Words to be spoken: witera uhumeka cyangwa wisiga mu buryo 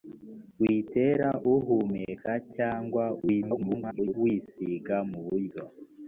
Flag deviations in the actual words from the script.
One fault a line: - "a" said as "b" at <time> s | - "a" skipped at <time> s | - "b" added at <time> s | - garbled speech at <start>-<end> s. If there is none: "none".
- garbled speech at 3.2-4.1 s